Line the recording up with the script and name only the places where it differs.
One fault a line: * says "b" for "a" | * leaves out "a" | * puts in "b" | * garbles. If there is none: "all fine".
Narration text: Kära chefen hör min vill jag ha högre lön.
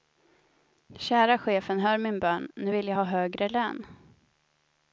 * puts in "bön nu"